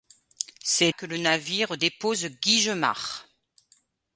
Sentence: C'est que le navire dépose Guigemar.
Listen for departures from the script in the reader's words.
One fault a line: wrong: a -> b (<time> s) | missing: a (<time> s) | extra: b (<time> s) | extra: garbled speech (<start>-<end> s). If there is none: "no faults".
no faults